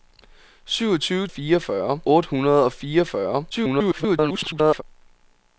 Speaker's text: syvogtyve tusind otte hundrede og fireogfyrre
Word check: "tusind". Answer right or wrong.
wrong